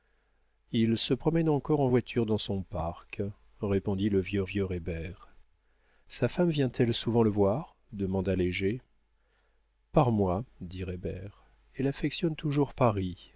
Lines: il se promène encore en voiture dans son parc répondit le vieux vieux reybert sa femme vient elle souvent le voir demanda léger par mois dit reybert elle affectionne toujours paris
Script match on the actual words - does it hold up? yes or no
yes